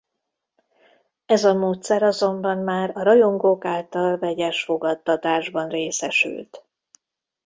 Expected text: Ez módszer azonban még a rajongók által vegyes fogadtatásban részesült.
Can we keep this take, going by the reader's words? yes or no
no